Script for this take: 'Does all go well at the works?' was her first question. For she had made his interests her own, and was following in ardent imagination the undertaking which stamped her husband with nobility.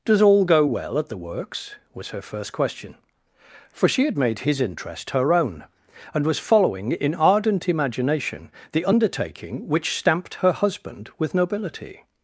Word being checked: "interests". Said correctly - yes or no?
no